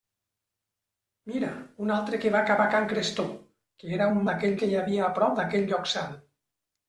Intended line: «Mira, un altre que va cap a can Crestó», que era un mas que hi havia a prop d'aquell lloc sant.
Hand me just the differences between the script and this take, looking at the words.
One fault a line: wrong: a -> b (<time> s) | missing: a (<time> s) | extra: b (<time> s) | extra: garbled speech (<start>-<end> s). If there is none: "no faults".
wrong: mas -> d'aquell (4.3 s)